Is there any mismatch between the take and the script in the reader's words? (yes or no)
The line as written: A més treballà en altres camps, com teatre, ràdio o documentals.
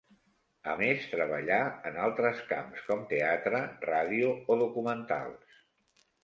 no